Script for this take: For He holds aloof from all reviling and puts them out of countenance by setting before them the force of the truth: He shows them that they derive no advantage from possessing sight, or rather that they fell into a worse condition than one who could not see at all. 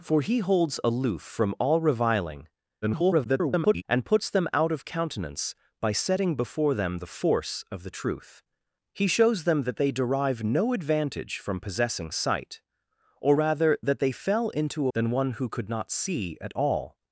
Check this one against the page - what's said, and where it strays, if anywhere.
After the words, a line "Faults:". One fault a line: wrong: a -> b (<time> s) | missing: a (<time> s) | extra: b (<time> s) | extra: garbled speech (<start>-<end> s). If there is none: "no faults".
For He holds aloof from all reviling [garbled] and puts them out of countenance by setting before them the force of the truth: He shows them that they derive no advantage from possessing sight, or rather that they fell into than one who could not see at all.
Faults:
extra: garbled speech (2.8-3.8 s)
missing: a worse condition (14.9 s)